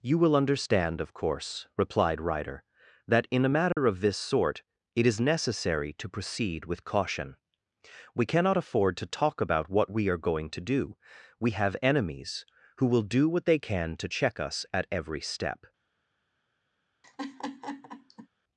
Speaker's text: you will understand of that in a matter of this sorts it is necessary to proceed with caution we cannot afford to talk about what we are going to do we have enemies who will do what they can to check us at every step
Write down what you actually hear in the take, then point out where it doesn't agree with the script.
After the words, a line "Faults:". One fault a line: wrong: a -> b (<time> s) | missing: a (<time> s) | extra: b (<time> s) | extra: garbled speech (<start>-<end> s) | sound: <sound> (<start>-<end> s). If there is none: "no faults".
you will understand of course replied ryder that in a matter of this sort it is necessary to proceed with caution we cannot afford to talk about what we are going to do we have enemies who will do what they can to check us at every step
Faults:
extra: course replied ryder (1.1 s)
sound: dropout (3.7-3.8 s)
wrong: sorts -> sort (4.2 s)
sound: laugh (17.0-18.3 s)